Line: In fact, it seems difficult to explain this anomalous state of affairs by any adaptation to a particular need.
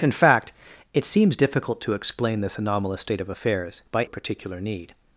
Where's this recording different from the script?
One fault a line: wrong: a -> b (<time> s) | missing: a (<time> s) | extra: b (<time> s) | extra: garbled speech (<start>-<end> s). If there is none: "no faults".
missing: any adaptation to (4.1 s)